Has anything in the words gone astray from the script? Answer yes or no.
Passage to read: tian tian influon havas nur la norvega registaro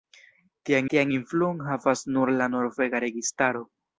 no